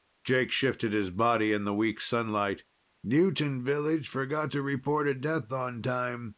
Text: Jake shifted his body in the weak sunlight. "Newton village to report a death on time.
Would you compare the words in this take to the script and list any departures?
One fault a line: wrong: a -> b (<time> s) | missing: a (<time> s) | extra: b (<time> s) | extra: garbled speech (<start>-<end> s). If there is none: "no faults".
extra: forgot (4.1 s)